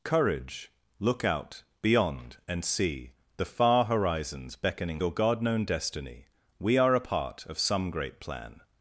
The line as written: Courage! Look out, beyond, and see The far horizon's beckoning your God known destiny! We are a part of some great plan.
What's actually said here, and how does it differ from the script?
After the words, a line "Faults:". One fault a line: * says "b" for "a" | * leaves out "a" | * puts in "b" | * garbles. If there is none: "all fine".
Courage! Look out, beyond, and see The far horizon's beckoning your God known destiny! We are a part of some great plan.
Faults:
all fine